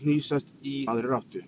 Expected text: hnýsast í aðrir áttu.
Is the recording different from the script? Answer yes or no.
no